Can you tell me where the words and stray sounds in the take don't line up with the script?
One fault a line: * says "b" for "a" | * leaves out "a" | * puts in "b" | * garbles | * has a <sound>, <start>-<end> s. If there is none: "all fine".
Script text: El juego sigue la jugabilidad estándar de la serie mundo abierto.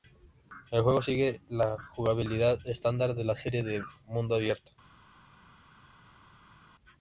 * puts in "de"